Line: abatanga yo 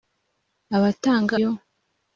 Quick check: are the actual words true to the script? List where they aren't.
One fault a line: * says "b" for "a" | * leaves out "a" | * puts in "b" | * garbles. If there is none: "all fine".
all fine